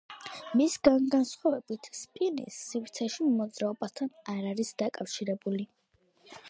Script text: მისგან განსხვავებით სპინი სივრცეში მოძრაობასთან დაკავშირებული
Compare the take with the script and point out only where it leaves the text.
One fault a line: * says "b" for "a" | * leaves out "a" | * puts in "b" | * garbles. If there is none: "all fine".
* puts in "არ არის"